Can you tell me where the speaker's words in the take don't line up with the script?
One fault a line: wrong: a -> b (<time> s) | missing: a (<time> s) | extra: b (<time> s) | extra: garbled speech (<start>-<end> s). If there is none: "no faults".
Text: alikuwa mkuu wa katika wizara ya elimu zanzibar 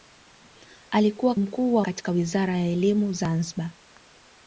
no faults